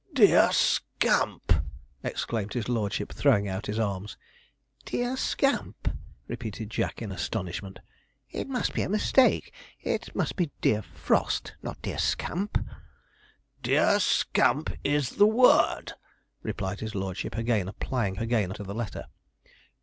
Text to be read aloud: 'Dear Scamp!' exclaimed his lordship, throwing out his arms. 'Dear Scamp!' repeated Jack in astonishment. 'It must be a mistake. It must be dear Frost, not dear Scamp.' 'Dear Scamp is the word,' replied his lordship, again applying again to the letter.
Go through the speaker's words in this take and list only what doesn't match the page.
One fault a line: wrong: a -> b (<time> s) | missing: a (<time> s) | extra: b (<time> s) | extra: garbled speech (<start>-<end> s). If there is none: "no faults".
no faults